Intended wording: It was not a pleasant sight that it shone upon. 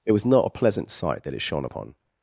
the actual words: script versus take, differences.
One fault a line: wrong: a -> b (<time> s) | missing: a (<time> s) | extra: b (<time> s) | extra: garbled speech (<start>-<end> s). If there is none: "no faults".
no faults